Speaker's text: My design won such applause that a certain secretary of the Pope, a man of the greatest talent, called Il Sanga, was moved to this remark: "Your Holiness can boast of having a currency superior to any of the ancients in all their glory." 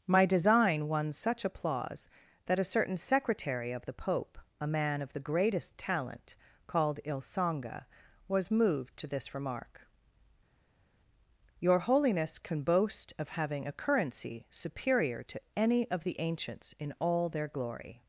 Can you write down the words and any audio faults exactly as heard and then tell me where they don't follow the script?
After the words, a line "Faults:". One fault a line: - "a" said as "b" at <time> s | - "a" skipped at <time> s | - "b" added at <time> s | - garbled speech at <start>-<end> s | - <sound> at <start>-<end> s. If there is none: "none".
My design won such applause that a certain secretary of the Pope, a man of the greatest talent, called Il Sanga, was moved to this remark: "Your Holiness can boast of having a currency superior to any of the ancients in all their glory."
Faults:
none